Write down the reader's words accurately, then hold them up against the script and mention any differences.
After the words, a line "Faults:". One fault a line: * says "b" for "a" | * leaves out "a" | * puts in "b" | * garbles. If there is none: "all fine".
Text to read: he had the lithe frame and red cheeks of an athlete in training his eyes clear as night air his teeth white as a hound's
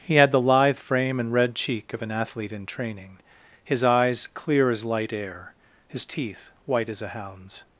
he had the lithe frame and red cheek of an athlete in training his eyes clear as light air his teeth white as a hound's
Faults:
* says "cheek" for "cheeks"
* says "light" for "night"